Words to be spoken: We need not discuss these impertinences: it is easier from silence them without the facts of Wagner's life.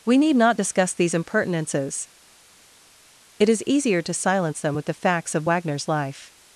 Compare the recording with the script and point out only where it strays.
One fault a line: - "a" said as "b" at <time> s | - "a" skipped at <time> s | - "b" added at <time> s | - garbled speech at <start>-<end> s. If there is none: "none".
- "from" said as "to" at 4.0 s
- "without" said as "with" at 4.7 s